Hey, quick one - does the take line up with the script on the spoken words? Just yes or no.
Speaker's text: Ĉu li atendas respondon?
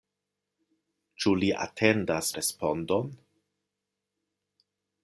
yes